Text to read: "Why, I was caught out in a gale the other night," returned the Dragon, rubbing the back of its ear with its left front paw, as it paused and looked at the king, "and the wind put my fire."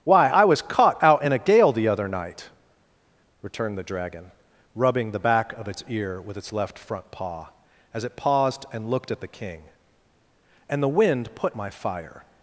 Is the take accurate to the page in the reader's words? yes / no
yes